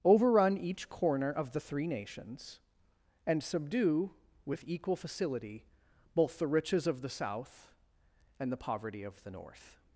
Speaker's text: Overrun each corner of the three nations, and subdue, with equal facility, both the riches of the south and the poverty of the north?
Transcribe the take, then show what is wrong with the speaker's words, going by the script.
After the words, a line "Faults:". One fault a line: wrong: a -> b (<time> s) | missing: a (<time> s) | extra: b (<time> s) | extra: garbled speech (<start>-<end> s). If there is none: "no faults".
Overrun each corner of the three nations, and subdue, with equal facility, both the riches of the south and the poverty of the north?
Faults:
no faults